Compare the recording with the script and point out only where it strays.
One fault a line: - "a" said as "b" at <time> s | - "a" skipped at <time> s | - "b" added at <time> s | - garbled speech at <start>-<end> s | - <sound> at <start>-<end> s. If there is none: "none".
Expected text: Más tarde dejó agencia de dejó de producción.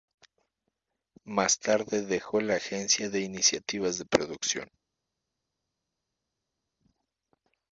- "la" added at 2.4 s
- "dejó" said as "iniciativas" at 3.2 s